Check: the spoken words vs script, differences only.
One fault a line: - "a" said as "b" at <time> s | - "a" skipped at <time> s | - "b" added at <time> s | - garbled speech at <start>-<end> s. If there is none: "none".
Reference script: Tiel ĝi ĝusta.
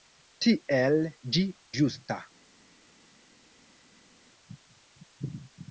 none